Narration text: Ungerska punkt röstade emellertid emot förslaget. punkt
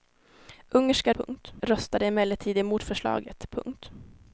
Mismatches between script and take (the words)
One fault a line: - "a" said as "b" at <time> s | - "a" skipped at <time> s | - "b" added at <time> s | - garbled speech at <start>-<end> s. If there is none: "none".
none